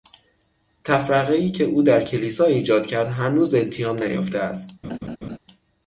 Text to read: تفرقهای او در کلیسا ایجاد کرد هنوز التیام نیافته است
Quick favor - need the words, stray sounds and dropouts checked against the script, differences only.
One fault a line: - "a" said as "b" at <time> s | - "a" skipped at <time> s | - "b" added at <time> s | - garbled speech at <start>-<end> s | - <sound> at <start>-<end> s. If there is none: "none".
- "که" added at 1.5 s
- laugh at 4.8-5.4 s